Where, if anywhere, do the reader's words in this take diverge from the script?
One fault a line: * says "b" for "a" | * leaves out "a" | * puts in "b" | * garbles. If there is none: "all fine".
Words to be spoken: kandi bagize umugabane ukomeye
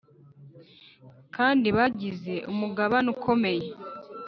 all fine